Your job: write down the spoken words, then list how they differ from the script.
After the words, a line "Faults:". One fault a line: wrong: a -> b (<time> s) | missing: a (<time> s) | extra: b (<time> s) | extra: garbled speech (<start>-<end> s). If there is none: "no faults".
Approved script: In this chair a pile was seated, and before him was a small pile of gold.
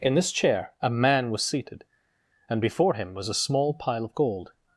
In this chair a man was seated, and before him was a small pile of gold.
Faults:
wrong: pile -> man (0.9 s)